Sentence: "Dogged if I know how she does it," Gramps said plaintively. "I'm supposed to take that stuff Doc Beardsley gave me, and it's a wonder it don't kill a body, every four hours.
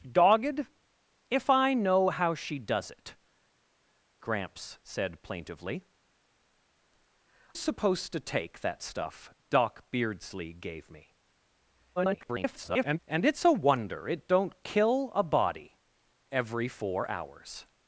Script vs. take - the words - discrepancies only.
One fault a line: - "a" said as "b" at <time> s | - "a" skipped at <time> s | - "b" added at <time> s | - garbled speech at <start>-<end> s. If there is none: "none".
- "I'm" skipped at 5.8 s
- garbled speech at 12.0-13.0 s